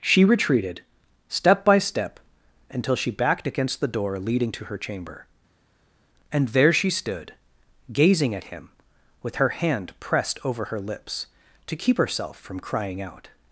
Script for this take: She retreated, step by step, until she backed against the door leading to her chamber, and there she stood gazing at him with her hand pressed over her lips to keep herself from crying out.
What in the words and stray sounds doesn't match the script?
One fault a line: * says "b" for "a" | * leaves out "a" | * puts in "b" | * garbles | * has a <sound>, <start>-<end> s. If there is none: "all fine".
all fine